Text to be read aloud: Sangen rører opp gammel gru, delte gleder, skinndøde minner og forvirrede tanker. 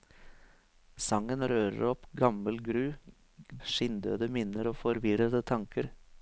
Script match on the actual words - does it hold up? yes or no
no